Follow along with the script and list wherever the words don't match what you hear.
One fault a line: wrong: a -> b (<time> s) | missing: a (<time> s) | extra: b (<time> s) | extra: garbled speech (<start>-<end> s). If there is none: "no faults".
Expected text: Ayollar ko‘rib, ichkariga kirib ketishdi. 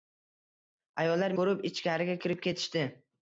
no faults